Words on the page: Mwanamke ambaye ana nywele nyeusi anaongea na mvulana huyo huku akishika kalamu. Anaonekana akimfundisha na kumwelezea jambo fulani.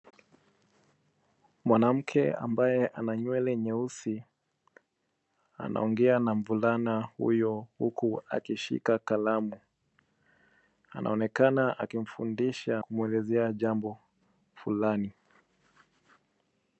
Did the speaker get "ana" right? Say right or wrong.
right